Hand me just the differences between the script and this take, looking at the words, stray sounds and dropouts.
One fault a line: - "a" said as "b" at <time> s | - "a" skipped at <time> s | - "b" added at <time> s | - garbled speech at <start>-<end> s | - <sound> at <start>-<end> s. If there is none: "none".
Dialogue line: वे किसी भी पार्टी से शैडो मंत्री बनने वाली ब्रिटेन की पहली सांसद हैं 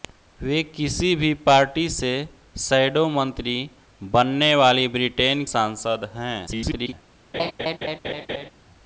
- "की पहली" skipped at 5.4 s
- garbled speech at 6.5-6.9 s
- laugh at 7.3-8.5 s